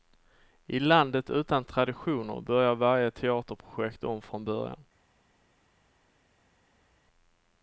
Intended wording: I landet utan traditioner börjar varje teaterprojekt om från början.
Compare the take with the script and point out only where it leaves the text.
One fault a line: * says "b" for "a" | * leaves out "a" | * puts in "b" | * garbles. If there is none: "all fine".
all fine